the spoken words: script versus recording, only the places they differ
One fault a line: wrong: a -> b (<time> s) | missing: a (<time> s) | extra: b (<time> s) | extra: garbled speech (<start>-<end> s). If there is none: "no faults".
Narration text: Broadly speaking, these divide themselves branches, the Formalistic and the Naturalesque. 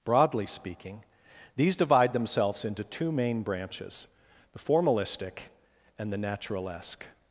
extra: into two main (2.6 s)